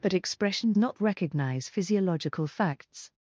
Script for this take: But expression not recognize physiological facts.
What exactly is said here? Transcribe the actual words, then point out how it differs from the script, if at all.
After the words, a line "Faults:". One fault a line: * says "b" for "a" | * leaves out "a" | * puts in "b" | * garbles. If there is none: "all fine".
But expression not recognize physiological facts.
Faults:
all fine